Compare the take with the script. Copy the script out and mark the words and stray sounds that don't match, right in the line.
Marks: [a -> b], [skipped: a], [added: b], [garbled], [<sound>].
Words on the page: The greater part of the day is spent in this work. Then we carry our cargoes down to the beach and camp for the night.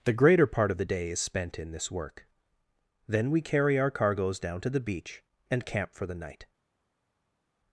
The greater part of the day is spent in this work. Then we carry our cargoes down to the beach and camp for the night.